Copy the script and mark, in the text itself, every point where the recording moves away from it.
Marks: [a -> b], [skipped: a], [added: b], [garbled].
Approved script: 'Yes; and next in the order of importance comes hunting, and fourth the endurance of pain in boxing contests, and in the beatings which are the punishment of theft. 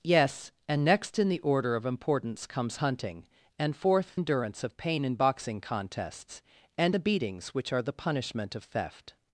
'Yes; and next in the order of importance comes hunting, and fourth [skipped: the] endurance of pain in boxing contests, and [skipped: in] the beatings which are the punishment of theft.